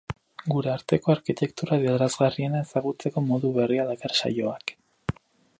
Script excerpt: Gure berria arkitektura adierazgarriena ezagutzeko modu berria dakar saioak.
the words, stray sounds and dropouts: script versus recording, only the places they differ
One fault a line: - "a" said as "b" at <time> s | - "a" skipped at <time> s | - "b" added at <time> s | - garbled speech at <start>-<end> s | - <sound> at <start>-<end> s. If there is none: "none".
- "berria" said as "arteko" at 0.8 s